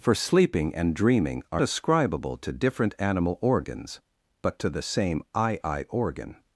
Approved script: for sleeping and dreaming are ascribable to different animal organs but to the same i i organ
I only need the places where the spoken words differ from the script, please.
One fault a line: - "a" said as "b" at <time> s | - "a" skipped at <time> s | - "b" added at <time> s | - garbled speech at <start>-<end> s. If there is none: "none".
none